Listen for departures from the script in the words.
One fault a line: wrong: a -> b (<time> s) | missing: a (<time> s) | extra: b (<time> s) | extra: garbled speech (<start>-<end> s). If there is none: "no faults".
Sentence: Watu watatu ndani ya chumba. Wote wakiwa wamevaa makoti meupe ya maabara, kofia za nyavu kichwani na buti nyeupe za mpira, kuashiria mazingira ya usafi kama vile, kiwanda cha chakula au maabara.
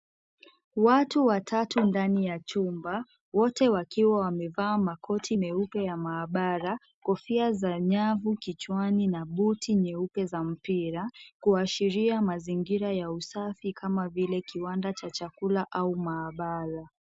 no faults